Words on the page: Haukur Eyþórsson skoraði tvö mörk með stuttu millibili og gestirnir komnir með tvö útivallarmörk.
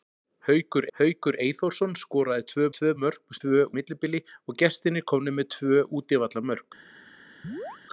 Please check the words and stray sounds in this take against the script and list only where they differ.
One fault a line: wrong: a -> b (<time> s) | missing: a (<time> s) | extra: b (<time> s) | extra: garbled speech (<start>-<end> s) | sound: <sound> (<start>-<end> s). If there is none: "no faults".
extra: haukur (1.0 s)
extra: tvö (2.8 s)
wrong: stuttu -> tvö (3.4 s)
sound: chirp (7.4-7.8 s)